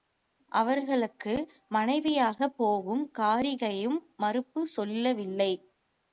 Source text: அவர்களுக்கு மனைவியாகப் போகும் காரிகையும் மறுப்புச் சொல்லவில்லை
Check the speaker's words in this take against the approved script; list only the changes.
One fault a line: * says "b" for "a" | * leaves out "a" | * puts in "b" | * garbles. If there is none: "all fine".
all fine